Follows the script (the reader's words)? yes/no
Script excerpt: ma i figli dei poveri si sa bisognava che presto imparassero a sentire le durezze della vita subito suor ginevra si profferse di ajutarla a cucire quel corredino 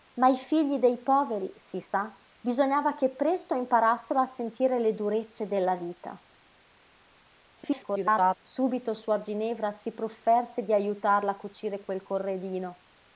no